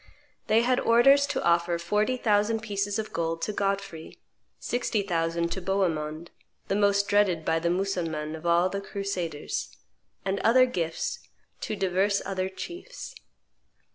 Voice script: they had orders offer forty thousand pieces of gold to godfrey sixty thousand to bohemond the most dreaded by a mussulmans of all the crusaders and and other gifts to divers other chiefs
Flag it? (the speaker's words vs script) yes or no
yes